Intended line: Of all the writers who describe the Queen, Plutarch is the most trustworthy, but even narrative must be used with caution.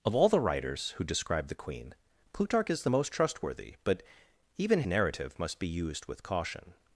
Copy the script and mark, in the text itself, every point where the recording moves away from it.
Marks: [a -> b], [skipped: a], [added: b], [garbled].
Of all the writers who describe the Queen, Plutarch is the most trustworthy, but even narrative must be used with caution.